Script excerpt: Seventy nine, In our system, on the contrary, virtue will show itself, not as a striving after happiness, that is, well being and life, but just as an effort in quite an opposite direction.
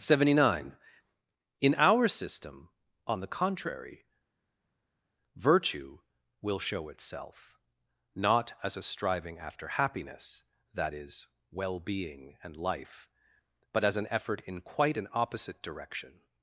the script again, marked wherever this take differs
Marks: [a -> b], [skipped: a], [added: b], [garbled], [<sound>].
Seventy nine, In our system, on the contrary, virtue will show itself, not as a striving after happiness, that is, well being and life, but [skipped: just] as an effort in quite an opposite direction.